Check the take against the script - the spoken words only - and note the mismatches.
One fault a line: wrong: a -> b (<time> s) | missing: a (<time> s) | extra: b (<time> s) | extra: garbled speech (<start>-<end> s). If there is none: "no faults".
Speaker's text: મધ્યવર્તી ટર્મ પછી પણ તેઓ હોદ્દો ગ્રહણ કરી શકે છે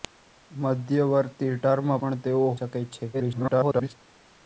missing: પછી (1.9 s)
missing: હોદ્દો ગ્રહણ કરી (2.5 s)
extra: garbled speech (3.1-3.9 s)